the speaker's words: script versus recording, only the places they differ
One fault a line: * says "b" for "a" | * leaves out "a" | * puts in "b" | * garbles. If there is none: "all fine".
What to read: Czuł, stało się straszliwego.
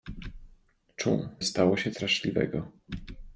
all fine